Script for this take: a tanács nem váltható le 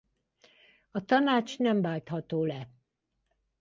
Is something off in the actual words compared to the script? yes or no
no